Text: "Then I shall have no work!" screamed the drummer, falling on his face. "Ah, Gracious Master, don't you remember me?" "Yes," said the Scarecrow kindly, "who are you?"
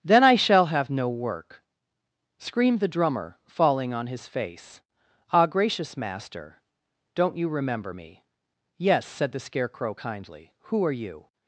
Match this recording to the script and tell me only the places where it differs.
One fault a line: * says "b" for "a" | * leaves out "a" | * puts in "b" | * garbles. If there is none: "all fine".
all fine